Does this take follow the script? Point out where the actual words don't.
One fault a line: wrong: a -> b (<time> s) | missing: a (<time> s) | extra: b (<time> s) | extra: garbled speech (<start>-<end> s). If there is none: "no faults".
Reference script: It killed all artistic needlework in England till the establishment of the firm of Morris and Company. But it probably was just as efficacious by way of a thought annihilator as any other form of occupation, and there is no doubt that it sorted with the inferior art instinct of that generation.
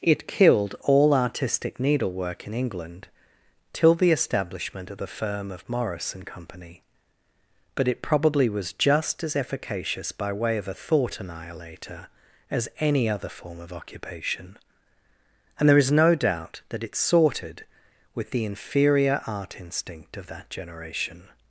no faults